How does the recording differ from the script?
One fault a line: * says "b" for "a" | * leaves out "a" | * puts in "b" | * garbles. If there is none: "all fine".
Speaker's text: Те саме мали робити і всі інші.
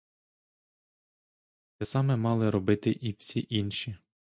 all fine